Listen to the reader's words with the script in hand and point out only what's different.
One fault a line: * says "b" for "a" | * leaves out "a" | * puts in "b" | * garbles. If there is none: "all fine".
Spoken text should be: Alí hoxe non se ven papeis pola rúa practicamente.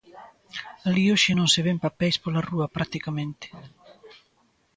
all fine